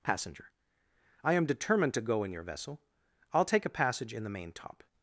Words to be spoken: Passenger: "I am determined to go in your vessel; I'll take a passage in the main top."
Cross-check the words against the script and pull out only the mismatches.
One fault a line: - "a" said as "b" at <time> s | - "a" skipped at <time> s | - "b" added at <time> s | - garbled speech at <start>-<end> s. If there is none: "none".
none